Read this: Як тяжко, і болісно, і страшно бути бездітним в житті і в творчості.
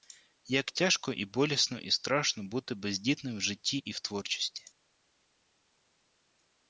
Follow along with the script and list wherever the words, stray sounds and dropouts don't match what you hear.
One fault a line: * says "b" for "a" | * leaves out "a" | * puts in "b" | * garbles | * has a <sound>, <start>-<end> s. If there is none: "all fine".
all fine